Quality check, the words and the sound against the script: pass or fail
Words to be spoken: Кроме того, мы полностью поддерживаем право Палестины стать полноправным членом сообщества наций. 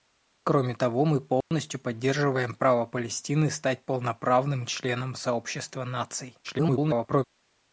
fail